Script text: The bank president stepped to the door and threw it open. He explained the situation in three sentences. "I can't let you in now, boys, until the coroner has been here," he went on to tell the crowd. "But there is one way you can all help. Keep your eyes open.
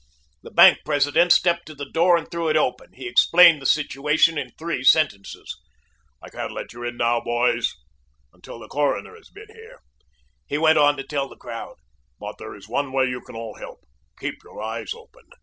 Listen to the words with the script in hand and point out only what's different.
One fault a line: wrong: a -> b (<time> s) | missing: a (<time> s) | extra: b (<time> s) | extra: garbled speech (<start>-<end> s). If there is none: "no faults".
no faults